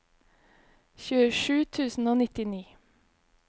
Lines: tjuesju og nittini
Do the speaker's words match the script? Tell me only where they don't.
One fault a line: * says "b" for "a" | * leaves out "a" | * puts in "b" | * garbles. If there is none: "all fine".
* puts in "tusen"